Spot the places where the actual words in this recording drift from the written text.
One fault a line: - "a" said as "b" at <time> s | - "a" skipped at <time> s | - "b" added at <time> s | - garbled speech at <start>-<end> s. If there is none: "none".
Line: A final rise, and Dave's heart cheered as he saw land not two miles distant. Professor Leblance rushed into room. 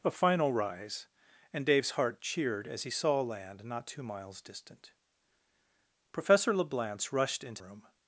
none